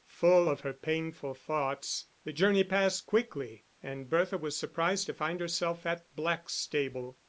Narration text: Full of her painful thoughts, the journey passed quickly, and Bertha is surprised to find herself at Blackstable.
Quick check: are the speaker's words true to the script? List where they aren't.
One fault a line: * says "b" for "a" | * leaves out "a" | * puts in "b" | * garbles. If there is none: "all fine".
* says "was" for "is"